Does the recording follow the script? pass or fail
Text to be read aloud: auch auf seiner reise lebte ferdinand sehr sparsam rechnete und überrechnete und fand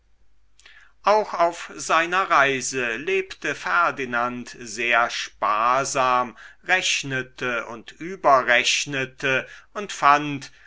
pass